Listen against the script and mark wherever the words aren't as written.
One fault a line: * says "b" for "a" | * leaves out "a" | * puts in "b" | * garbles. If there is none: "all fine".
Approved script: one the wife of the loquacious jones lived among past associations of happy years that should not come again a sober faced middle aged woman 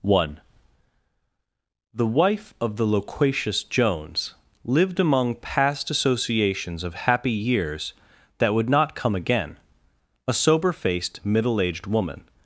* says "would" for "should"